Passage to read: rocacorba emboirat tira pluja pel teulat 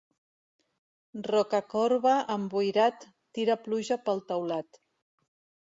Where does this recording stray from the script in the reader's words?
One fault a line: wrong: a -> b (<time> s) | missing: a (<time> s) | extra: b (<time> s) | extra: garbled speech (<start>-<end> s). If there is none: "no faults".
no faults